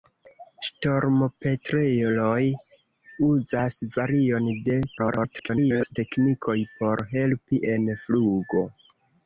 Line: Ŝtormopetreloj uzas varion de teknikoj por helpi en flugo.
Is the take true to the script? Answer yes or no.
no